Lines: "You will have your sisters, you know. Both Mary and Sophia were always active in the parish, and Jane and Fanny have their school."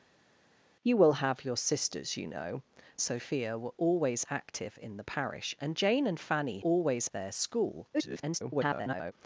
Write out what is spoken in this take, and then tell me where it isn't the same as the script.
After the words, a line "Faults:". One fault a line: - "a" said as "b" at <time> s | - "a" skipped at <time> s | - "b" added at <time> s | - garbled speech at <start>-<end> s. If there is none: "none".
"You will have your sisters, you know. Sophia were always active in the parish, and Jane and Fanny always their school." [garbled]
Faults:
- "Both Mary and" skipped at 2.6 s
- "have" said as "always" at 6.6 s
- garbled speech at 7.9-9.1 s